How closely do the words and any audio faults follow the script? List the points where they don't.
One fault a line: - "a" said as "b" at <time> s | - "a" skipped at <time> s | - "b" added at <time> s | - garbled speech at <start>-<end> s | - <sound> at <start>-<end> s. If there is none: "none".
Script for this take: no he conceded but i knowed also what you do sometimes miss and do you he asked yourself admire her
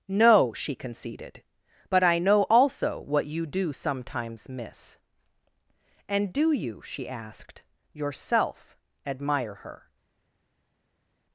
- "he" said as "she" at 0.5 s
- "knowed" said as "know" at 2.2 s
- "he" said as "she" at 6.8 s